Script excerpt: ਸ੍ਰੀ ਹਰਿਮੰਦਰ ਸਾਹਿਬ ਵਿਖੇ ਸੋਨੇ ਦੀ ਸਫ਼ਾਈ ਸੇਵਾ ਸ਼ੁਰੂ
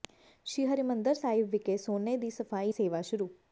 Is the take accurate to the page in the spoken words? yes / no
yes